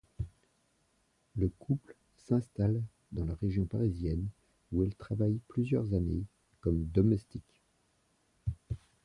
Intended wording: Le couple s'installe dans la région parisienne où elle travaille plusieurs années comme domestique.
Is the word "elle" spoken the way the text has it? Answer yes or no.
yes